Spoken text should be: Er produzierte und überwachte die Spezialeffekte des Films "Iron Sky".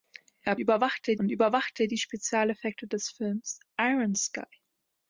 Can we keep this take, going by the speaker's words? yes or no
no